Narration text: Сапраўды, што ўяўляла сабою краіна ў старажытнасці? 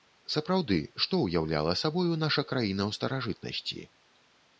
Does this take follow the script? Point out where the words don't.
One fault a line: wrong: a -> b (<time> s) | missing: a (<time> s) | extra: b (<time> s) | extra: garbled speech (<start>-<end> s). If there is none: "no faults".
extra: наша (2.2 s)